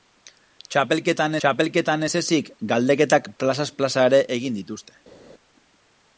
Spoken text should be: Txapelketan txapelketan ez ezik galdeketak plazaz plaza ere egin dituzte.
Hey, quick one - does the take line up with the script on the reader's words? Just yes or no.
yes